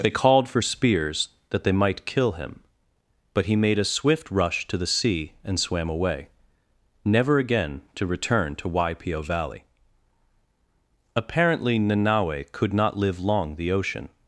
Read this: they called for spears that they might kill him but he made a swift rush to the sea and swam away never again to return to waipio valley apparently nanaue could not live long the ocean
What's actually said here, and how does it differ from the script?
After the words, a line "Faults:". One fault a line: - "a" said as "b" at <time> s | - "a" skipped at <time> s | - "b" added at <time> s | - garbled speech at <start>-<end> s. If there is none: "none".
they called for spears that they might kill him but he made a swift rush to the sea and swam away never again to return to waipio valley apparently nanaue could not live long the ocean
Faults:
none